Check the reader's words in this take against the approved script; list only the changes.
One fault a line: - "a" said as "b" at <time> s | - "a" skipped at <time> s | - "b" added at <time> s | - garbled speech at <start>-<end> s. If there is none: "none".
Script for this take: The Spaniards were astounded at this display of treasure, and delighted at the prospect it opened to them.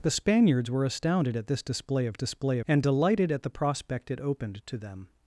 - "treasure" said as "display" at 2.1 s